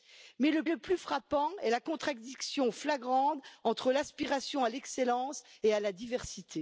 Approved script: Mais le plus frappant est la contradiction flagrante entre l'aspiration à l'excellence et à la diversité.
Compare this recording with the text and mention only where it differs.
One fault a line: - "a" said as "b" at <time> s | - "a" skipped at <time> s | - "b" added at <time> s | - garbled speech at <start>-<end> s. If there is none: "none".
- "le" added at 0.7 s